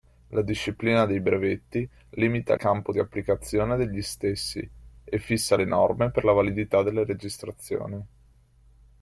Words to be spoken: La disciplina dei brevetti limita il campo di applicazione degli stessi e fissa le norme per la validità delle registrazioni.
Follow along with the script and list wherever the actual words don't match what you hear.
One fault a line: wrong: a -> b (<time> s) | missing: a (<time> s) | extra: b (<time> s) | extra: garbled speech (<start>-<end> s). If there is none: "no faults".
missing: il (2.5 s)